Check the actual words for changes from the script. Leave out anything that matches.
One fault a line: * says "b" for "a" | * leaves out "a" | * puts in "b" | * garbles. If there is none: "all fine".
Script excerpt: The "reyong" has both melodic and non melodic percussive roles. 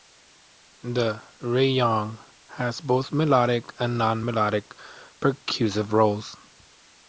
all fine